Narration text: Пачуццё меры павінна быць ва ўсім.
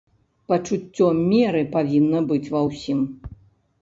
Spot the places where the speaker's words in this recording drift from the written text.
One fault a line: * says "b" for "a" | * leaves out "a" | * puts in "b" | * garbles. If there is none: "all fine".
all fine